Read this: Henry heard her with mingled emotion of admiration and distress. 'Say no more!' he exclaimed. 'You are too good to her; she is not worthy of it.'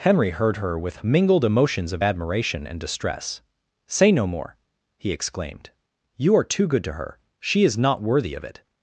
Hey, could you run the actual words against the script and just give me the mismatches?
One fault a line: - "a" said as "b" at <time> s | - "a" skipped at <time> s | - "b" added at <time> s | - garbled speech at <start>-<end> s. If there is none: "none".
- "emotion" said as "emotions" at 1.4 s